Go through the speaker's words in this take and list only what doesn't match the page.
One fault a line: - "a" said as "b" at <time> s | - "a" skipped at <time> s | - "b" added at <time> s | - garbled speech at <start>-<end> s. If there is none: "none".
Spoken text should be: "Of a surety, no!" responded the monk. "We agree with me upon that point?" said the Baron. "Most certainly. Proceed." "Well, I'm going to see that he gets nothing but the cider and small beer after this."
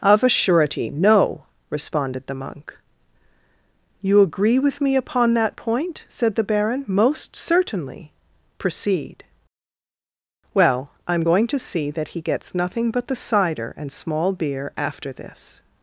- "We" said as "You" at 4.0 s